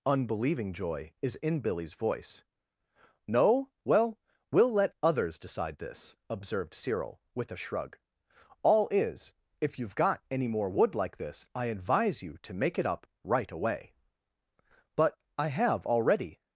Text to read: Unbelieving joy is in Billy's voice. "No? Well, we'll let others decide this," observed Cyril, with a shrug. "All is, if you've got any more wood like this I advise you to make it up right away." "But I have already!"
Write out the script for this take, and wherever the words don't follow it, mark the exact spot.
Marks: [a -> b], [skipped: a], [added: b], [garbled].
Unbelieving joy is in Billy's voice. "No? Well, we'll let others decide this," observed Cyril, with a shrug. "All is, if you've got any more wood like this I advise you to make it up right away." "But I have already!"